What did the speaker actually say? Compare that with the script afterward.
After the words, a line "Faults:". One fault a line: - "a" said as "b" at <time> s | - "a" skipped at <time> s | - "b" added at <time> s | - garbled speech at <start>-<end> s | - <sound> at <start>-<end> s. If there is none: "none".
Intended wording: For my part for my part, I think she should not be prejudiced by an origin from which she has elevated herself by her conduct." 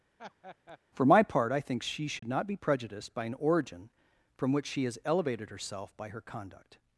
For my part, I think she should not be prejudiced by an origin from which she has elevated herself by her conduct."
Faults:
- laugh at 0.2-0.8 s
- "for my part" skipped at 1.5 s
- dropout at 2.2-2.2 s